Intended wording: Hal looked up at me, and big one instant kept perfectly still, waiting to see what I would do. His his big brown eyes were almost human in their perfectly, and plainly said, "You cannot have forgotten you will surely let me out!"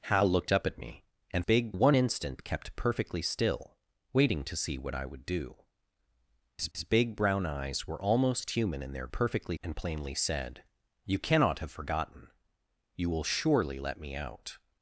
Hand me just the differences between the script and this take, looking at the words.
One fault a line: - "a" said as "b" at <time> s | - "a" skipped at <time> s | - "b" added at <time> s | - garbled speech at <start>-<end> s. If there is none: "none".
none